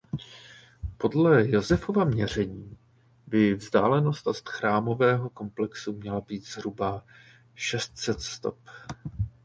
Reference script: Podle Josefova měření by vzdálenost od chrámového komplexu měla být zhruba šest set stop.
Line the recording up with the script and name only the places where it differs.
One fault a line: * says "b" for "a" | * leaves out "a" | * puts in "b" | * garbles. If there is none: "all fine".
all fine